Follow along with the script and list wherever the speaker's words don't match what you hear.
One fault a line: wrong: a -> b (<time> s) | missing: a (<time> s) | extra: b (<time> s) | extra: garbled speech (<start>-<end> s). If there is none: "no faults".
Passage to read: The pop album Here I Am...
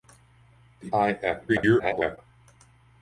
missing: pop album Here (0.9 s)
extra: garbled speech (1.5-2.2 s)